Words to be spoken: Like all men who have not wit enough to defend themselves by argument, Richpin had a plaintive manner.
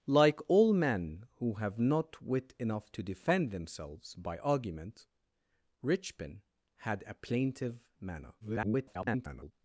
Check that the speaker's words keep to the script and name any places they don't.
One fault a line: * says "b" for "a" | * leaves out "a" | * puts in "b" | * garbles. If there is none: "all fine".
* garbles